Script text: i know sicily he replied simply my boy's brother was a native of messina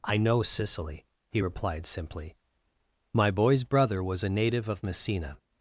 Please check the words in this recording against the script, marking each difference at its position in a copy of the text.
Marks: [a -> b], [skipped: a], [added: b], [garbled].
i know sicily he replied simply my boy's brother was a native of messina